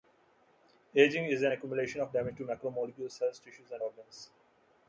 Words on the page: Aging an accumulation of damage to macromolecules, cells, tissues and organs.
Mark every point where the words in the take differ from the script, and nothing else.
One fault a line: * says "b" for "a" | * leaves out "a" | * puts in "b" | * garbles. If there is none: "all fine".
* puts in "is"